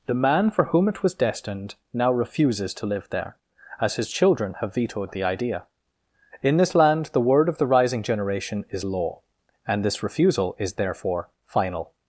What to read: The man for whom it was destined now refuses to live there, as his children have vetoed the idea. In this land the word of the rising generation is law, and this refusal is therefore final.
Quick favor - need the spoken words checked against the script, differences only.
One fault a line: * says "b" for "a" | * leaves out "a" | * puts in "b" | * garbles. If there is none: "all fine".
all fine